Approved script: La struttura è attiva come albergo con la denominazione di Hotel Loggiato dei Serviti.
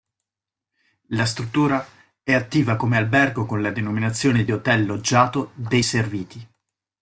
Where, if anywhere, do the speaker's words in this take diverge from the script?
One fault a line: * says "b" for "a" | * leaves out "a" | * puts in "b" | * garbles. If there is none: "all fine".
all fine